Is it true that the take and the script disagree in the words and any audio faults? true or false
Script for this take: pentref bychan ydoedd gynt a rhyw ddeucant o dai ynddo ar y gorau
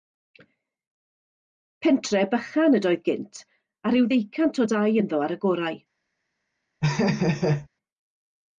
true